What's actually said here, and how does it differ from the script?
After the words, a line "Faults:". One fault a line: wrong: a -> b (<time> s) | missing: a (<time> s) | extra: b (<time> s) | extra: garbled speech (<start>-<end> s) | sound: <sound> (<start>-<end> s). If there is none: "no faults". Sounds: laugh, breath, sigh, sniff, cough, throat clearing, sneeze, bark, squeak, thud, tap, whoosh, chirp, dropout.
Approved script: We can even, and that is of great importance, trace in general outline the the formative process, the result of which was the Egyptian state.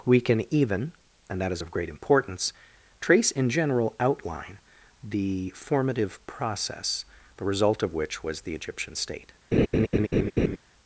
We can even, and that is of great importance, trace in general outline the formative process, the result of which was the Egyptian state.
Faults:
missing: the (5.5 s)
sound: laugh (9.5-10.6 s)